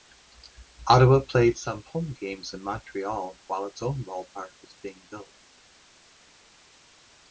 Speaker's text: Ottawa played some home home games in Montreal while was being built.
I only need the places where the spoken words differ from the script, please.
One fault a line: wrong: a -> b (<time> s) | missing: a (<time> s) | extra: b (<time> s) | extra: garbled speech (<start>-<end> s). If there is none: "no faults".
missing: home (2.1 s)
extra: its own ballpark (3.7 s)